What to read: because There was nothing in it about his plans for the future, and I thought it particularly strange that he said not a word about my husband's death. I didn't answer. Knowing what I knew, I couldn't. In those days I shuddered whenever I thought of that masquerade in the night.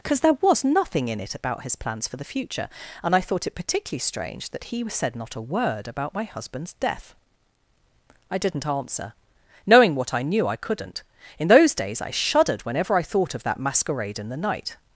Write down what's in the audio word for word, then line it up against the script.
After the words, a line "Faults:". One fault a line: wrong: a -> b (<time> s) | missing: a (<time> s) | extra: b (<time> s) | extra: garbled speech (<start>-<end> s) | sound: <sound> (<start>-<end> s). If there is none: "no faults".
because There was nothing in it about his plans for the future, and I thought it particularly strange that he said not a word about my husband's death. I didn't answer. Knowing what I knew, I couldn't. In those days I shuddered whenever I thought of that masquerade in the night.
Faults:
no faults